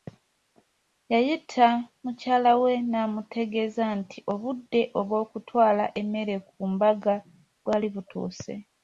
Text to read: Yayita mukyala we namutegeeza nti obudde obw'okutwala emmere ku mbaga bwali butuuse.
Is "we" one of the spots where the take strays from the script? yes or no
no